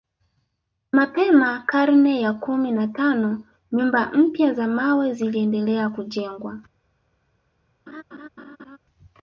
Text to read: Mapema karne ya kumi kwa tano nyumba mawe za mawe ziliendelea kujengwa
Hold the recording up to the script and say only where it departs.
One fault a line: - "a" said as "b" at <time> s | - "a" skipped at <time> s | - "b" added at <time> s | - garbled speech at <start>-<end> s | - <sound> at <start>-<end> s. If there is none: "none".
- "kwa" said as "na" at 2.7 s
- "mawe" said as "mpya" at 4.1 s
- laugh at 7.9-8.8 s